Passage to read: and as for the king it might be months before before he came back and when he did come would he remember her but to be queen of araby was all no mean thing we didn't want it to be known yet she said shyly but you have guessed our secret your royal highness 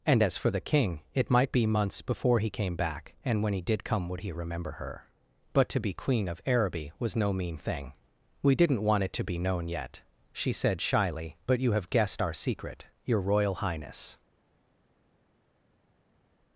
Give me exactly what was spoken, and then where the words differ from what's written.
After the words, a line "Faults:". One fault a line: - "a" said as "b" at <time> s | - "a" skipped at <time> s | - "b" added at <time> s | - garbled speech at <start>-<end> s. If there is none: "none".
and as for the king it might be months before he came back and when he did come would he remember her but to be queen of araby was no mean thing we didn't want it to be known yet she said shyly but you have guessed our secret your royal highness
Faults:
- "before" skipped at 2.4 s
- "all" skipped at 7.2 s